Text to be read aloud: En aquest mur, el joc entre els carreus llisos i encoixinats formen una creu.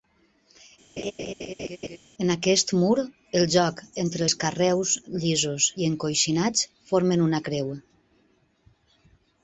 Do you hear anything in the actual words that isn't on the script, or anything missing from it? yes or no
no